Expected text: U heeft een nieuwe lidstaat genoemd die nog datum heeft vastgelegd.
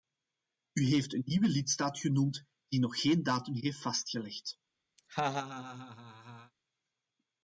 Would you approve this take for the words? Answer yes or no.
no